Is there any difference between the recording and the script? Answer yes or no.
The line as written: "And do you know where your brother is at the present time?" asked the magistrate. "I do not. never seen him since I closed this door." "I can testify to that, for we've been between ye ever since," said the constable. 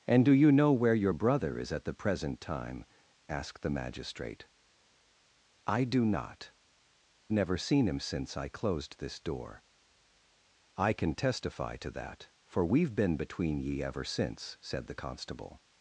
no